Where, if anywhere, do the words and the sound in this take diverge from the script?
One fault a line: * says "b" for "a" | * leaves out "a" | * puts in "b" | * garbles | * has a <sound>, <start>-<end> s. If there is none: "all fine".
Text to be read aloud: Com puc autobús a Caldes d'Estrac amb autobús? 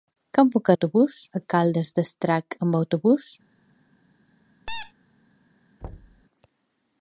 * has a squeak, 4.7-4.9 s
* has a thud, 5.8-6.3 s